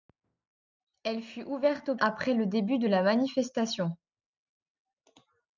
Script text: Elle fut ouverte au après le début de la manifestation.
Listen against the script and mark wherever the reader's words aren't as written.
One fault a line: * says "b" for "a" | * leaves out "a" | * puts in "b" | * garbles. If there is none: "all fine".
all fine